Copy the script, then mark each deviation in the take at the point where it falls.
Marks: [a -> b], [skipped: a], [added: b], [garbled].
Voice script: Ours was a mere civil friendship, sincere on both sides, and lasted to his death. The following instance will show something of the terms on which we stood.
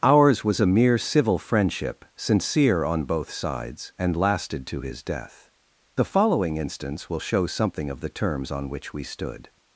Ours was a mere civil friendship, sincere on both sides, and lasted to his death. The following instance will show something of the terms on which we stood.